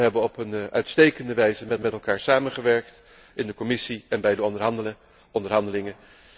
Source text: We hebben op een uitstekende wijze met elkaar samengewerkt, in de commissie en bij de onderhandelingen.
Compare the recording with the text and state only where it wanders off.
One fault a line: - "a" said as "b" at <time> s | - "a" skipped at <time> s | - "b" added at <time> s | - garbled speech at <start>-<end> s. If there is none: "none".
- "met" added at 1.8 s